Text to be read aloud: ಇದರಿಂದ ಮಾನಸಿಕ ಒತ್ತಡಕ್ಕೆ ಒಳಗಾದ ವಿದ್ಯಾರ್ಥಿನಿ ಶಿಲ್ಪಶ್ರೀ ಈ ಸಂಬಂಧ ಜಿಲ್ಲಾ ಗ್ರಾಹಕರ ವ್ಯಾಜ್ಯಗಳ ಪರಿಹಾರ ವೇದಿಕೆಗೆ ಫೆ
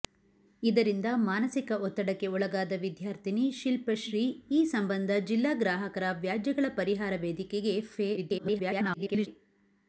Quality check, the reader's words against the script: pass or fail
fail